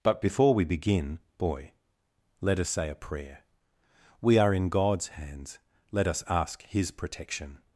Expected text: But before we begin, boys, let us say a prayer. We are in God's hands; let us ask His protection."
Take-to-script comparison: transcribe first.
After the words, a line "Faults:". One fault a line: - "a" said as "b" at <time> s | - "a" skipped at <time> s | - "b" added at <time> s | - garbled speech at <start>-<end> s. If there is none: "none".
But before we begin, boy, let us say a prayer. We are in God's hands; let us ask His protection."
Faults:
- "boys" said as "boy" at 1.4 s